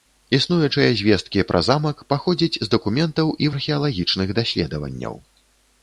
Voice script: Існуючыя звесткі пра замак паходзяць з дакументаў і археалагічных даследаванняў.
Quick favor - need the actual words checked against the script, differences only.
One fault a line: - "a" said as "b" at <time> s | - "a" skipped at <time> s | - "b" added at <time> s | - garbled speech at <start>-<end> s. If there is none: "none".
none